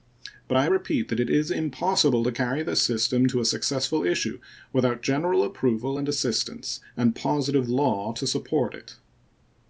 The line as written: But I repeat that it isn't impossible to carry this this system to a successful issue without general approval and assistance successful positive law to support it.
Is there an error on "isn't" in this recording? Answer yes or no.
yes